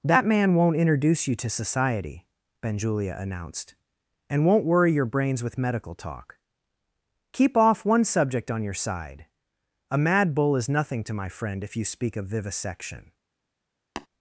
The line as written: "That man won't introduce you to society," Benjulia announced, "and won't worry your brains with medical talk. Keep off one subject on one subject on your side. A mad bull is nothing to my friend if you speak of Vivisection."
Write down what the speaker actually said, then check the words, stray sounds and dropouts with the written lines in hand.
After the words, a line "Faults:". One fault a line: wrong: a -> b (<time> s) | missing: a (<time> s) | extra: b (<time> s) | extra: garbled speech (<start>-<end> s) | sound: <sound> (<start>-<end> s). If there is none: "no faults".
"That man won't introduce you to society," Benjulia announced, "and won't worry your brains with medical talk. Keep off one subject on your side. A mad bull is nothing to my friend if you speak of Vivisection."
Faults:
missing: one subject on (8.6 s)
sound: tap (14.0-14.1 s)